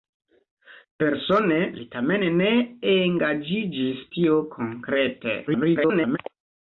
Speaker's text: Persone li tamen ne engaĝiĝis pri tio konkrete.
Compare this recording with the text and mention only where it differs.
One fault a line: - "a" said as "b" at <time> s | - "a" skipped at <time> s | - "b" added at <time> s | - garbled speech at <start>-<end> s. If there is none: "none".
- "pri" skipped at 4.1 s
- garbled speech at 5.5-6.2 s